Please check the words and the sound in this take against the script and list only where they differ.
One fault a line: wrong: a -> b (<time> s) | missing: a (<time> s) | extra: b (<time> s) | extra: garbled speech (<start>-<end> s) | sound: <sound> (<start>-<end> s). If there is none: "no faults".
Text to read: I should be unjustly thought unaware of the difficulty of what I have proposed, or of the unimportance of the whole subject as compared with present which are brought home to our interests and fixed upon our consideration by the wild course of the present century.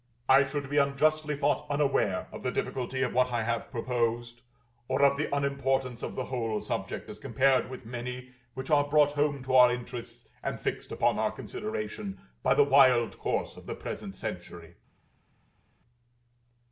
wrong: present -> many (7.8 s)